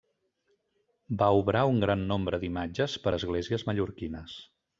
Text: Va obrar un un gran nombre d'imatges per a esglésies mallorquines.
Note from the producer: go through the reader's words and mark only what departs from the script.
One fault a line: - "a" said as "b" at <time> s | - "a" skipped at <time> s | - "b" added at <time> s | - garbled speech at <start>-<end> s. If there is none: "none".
- "un" skipped at 1.8 s